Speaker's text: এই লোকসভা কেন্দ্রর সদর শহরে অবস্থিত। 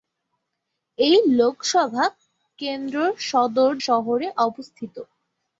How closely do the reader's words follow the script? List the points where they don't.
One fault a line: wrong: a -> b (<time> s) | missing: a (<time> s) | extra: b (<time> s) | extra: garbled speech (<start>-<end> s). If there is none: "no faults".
no faults